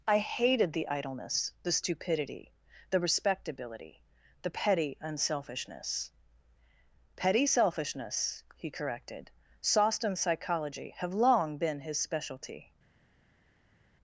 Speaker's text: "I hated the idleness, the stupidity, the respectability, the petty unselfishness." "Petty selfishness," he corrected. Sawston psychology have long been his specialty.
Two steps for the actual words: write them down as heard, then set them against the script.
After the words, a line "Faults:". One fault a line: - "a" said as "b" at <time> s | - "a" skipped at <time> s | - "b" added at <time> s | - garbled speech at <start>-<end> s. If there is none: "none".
"I hated the idleness, the stupidity, the respectability, the petty unselfishness." "Petty selfishness," he corrected. Sawston psychology have long been his specialty.
Faults:
none